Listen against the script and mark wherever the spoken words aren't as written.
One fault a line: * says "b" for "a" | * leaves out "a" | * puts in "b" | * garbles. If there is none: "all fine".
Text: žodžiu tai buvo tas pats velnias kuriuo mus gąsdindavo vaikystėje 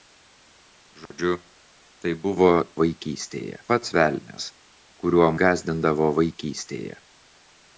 * says "vaikystėje" for "tas"
* leaves out "mus"